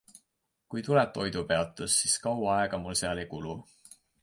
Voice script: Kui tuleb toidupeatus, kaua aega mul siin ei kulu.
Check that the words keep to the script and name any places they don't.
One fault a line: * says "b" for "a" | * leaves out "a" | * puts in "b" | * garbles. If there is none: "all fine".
* puts in "siis"
* says "seal" for "siin"